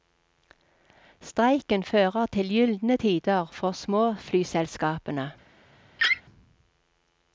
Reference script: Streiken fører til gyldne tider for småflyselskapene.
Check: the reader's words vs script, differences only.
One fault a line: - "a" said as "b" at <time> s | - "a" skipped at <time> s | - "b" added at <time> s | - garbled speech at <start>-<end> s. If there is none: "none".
none